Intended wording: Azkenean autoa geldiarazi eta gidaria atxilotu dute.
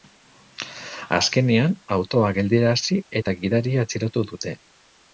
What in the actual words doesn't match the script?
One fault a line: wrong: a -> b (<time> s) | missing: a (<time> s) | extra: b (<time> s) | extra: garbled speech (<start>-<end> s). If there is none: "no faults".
no faults